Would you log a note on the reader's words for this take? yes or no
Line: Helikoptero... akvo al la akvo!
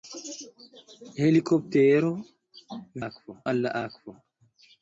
no